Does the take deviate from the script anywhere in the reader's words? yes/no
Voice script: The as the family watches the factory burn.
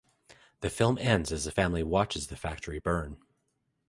yes